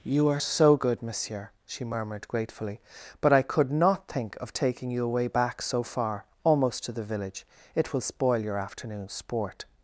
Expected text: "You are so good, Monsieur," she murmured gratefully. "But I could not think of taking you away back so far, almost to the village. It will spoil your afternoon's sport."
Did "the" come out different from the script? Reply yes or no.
no